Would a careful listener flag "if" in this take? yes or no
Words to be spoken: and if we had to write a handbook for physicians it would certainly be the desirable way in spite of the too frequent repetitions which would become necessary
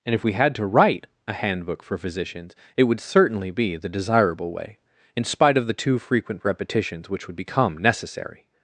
no